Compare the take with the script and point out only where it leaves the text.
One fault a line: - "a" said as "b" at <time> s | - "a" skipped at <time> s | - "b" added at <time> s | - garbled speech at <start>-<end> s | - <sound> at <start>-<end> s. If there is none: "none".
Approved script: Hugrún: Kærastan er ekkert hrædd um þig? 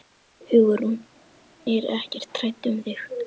- "Kærastan" skipped at 0.9 s